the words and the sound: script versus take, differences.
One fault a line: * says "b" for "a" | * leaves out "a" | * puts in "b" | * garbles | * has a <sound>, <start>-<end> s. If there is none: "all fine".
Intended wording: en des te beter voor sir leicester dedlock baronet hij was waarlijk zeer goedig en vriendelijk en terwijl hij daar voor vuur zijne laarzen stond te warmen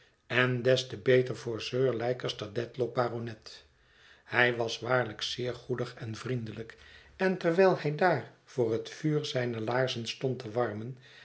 * puts in "het"